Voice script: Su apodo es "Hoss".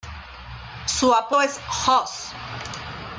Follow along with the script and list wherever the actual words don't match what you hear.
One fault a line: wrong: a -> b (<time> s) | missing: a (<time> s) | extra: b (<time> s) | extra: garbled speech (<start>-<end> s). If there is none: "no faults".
no faults